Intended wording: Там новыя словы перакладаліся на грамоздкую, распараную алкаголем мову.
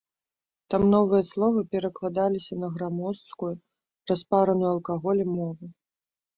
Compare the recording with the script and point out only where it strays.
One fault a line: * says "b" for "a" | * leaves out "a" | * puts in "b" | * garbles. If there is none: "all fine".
all fine